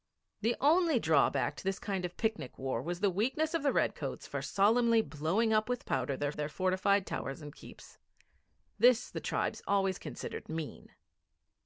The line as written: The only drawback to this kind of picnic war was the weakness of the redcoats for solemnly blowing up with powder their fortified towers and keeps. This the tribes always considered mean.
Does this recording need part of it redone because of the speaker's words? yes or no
yes